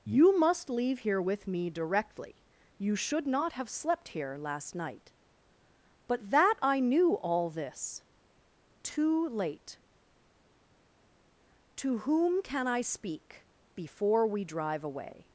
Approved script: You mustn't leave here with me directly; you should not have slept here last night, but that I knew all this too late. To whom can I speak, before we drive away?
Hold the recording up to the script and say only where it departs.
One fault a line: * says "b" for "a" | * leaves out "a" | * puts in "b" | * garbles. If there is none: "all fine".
* says "must" for "mustn't"